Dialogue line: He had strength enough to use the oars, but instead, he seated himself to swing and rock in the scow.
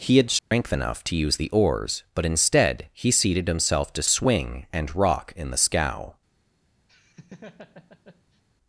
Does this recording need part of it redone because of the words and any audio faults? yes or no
yes